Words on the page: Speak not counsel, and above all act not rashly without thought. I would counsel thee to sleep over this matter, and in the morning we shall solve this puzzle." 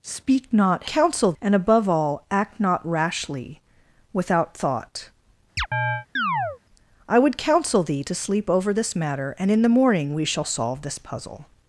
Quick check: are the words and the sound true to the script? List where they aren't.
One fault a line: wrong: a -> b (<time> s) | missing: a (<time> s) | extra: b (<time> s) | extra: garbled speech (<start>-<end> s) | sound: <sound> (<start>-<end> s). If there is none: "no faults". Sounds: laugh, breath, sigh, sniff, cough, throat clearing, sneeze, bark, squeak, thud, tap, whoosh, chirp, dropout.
sound: chirp (5.6-6.6 s)